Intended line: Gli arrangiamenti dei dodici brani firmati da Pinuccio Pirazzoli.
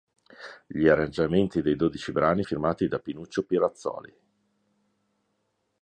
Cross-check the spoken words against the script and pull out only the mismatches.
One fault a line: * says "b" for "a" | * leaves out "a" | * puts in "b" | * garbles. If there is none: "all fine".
all fine